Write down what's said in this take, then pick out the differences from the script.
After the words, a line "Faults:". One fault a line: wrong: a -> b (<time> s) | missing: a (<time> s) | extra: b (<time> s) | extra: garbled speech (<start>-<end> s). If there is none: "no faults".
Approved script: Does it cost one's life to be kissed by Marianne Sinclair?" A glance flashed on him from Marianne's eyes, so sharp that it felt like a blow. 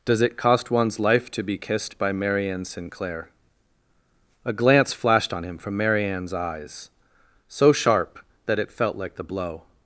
Does it cost one's life to be kissed by Marianne Sinclair?" A glance flashed on him from Marianne's eyes, so sharp that it felt like the blow.
Faults:
wrong: a -> the (9.2 s)